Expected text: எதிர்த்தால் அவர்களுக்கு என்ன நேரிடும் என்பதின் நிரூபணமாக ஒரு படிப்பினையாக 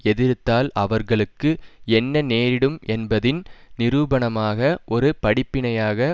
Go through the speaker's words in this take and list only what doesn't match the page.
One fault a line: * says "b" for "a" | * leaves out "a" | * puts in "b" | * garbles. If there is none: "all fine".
all fine